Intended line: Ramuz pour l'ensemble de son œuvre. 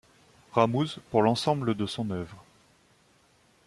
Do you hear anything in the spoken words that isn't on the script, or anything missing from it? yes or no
no